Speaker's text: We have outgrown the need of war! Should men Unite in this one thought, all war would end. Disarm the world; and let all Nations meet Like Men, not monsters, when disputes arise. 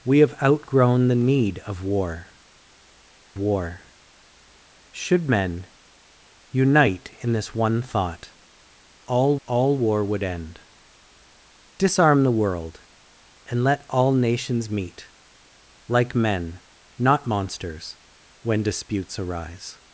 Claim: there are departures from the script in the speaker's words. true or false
true